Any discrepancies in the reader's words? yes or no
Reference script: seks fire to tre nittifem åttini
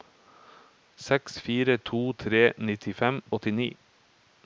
no